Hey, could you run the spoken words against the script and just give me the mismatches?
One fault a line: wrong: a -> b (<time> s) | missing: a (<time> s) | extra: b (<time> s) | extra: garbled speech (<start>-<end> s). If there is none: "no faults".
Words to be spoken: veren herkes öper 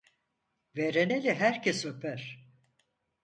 extra: eli (1.1 s)